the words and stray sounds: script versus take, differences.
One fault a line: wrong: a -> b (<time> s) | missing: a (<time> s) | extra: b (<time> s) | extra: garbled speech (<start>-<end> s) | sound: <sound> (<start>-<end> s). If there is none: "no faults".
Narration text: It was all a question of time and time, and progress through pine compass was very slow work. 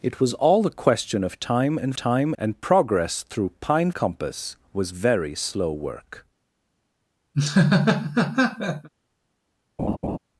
sound: laugh (7.3-8.9 s)
sound: laugh (9.8-10.2 s)